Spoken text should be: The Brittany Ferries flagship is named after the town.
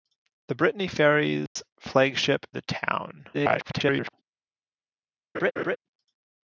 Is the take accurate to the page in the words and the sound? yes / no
no